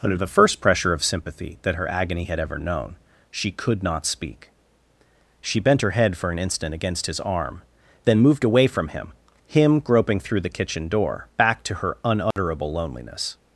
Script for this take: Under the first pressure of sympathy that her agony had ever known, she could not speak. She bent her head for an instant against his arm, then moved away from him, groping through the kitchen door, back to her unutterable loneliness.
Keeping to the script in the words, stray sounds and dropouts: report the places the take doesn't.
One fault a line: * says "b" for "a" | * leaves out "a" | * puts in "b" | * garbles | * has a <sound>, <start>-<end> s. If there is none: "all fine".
* puts in "him"
* has a dropout, 12.3-12.4 s